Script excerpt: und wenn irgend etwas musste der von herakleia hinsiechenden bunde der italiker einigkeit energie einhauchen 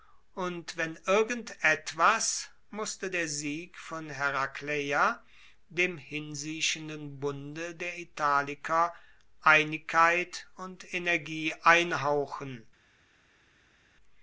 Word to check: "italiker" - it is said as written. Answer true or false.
true